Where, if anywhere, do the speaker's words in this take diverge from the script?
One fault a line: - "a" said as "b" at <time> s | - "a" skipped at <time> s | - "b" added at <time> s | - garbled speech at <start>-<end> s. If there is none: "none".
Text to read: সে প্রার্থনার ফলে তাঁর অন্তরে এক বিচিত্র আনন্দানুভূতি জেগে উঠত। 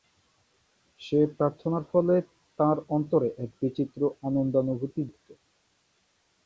- "জেগে" skipped at 5.0 s